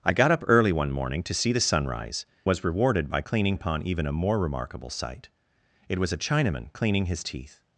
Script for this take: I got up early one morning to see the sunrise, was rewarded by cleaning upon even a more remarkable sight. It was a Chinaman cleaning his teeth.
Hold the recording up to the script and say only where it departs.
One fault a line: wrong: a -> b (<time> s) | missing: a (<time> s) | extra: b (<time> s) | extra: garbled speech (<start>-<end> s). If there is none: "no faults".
no faults